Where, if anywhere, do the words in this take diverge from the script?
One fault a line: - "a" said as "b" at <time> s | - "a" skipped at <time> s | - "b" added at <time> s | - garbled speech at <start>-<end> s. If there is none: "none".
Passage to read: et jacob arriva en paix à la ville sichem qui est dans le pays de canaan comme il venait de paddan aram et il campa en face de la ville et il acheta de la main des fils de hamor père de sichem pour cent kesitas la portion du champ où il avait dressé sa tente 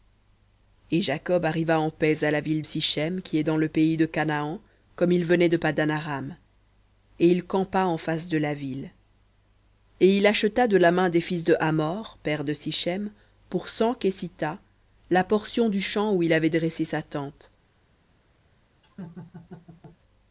none